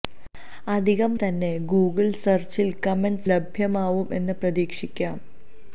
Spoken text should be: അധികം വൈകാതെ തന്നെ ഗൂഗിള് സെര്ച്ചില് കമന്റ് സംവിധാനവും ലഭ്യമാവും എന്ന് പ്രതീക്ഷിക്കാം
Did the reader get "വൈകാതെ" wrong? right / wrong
wrong